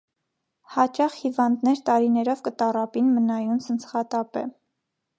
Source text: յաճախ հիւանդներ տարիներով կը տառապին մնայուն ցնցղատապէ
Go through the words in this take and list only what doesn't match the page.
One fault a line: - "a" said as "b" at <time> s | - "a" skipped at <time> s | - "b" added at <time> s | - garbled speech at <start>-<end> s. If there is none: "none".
none